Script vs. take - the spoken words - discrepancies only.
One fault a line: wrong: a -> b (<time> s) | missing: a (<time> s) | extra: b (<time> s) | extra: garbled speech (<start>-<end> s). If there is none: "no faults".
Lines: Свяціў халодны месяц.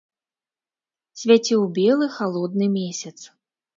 extra: белы (1.8 s)